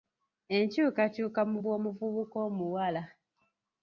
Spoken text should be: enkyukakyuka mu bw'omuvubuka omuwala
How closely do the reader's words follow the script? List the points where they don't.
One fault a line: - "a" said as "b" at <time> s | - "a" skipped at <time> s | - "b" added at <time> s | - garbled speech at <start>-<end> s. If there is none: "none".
none